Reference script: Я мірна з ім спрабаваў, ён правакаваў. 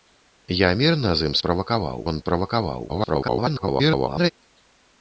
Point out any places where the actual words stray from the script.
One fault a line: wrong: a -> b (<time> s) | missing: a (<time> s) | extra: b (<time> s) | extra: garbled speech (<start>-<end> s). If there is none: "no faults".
wrong: спрабаваў -> правакаваў (1.5 s)
extra: garbled speech (2.9-4.3 s)